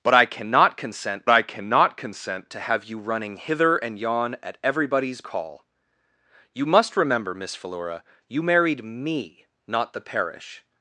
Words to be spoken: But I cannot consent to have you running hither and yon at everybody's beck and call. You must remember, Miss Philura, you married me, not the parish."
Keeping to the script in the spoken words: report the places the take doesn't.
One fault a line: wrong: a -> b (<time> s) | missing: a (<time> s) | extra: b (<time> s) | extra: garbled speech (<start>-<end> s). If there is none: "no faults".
extra: I cannot consent (1.3 s)
missing: beck and (5.2 s)